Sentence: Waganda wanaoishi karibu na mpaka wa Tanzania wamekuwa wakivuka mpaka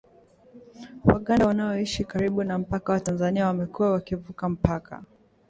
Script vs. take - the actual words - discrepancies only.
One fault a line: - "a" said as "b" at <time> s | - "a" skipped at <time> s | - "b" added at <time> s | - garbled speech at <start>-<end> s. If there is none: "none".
none